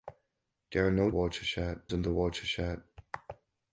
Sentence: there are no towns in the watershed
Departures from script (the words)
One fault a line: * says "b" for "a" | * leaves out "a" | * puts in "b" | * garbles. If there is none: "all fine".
* says "watershed" for "towns"